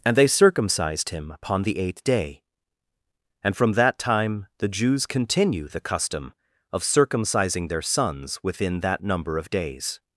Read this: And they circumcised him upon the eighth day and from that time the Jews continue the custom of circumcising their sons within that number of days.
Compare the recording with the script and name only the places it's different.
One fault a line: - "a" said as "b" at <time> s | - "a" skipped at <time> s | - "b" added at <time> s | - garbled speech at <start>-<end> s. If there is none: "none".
none